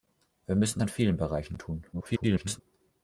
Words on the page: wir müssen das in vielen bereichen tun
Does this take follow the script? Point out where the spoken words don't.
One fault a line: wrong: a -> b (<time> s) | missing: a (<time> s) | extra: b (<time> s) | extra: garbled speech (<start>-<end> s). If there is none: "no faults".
missing: das (0.8 s)
extra: garbled speech (1.9-2.6 s)